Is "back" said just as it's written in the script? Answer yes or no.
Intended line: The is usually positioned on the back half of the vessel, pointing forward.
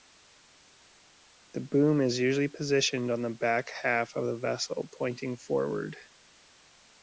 yes